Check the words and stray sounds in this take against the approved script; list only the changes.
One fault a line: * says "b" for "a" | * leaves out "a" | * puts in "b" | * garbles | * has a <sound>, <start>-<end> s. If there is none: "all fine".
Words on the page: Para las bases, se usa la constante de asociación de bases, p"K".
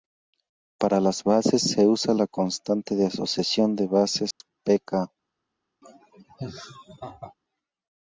* has a dropout, 4.3-4.4 s
* has a laugh, 5.8-7.3 s